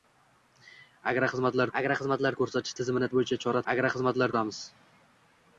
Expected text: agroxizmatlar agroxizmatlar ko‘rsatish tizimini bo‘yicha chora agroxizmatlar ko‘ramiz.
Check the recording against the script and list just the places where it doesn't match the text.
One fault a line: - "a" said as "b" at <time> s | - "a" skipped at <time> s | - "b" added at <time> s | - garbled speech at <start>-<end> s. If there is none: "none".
none